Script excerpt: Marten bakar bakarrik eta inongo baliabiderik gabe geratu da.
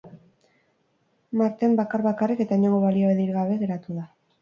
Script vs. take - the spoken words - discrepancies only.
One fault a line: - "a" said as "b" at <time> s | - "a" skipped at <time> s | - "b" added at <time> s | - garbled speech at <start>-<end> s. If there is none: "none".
none